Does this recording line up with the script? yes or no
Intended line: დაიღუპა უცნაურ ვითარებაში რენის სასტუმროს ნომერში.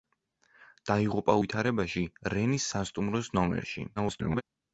no